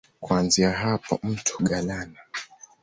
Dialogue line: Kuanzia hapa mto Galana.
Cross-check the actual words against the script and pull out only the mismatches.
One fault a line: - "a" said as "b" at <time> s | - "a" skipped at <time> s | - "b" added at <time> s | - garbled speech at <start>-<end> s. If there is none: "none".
none